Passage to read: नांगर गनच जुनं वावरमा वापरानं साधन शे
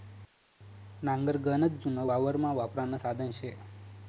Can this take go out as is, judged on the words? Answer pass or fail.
pass